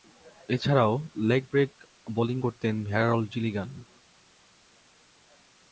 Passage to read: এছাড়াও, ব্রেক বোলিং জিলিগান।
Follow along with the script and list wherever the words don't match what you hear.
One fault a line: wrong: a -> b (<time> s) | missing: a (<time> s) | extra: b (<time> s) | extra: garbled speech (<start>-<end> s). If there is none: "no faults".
extra: লেগ (1.3 s)
extra: করতেন হ্যারল্ড (2.4 s)